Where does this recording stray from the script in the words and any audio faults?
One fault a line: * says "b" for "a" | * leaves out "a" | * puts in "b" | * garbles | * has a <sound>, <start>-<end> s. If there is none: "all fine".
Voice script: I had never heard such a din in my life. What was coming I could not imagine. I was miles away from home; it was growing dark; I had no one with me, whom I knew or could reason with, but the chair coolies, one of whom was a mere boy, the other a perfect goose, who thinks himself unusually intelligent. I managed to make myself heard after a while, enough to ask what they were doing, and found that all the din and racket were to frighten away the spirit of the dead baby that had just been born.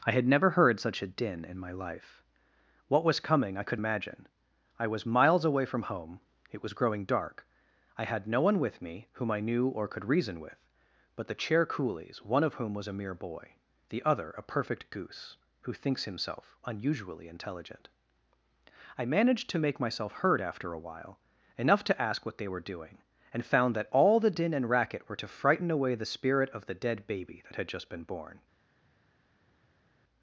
* leaves out "not"